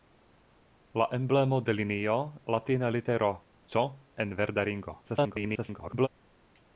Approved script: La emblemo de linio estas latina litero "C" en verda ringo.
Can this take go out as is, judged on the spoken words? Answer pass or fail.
fail